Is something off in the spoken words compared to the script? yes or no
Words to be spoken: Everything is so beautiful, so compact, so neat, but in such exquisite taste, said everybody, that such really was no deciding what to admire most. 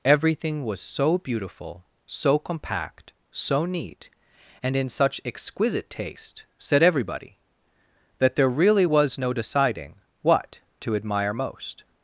yes